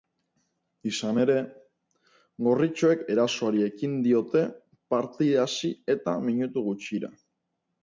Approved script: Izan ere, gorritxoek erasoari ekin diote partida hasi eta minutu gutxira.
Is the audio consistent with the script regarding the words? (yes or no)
yes